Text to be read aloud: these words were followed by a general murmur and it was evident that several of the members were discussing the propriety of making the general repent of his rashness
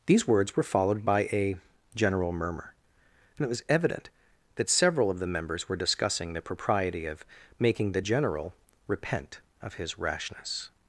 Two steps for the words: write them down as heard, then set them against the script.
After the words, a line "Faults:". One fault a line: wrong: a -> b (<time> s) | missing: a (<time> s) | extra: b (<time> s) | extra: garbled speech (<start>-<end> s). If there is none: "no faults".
these words were followed by a general murmur and it was evident that several of the members were discussing the propriety of making the general repent of his rashness
Faults:
no faults